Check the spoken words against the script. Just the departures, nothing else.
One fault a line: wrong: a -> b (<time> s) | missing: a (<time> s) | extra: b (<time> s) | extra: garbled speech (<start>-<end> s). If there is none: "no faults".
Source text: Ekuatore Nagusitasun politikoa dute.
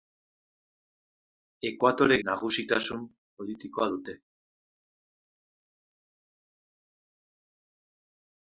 no faults